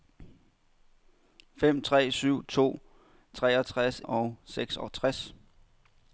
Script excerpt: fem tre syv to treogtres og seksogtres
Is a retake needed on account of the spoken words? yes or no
no